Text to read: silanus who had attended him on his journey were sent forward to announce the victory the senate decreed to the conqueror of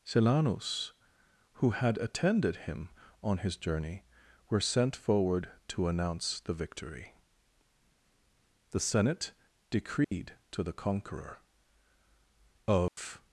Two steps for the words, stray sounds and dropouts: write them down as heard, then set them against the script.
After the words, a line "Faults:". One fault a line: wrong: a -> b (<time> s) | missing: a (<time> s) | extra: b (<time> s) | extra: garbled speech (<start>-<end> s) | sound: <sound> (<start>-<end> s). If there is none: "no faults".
silanus who had attended him on his journey were sent forward to announce the victory the senate decreed to the conqueror of
Faults:
sound: dropout (10.0-10.1 s)
sound: dropout (12.9-13.0 s)